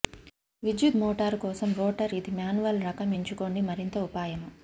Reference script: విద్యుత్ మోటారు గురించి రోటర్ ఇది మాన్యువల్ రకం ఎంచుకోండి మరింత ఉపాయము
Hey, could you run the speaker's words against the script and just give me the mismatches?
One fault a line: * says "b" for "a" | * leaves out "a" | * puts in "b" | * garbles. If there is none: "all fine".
* says "కోసం" for "గురించి"